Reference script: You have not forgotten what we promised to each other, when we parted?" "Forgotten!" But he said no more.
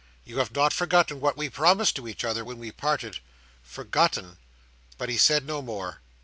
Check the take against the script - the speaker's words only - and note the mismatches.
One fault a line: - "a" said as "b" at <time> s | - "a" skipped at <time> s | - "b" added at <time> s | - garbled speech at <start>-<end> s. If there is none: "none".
none